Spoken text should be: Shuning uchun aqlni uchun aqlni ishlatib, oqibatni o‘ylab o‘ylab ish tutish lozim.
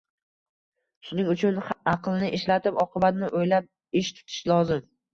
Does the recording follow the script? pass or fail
fail